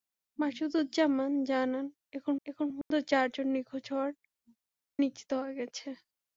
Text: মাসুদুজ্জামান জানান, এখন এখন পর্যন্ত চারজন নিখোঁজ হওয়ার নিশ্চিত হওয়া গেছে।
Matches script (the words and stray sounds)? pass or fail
fail